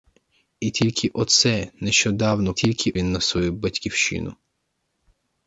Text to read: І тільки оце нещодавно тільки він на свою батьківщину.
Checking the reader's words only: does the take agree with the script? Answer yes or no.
yes